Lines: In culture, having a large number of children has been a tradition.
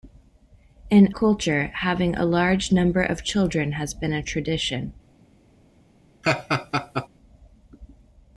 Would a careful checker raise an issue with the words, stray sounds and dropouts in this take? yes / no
yes